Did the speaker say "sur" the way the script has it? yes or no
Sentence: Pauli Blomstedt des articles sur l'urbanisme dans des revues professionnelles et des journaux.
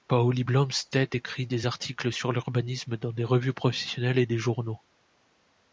yes